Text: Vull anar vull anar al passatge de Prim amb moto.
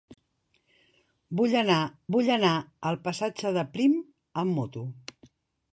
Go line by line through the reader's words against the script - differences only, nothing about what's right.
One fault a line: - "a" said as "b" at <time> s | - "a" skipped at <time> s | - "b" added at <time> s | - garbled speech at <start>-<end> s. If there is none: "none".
none